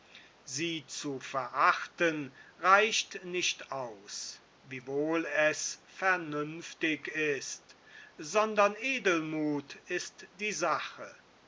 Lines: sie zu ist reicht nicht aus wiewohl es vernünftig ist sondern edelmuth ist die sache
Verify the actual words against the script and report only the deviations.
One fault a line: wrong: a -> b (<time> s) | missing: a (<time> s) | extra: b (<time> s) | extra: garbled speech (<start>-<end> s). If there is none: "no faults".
wrong: ist -> verachten (1.2 s)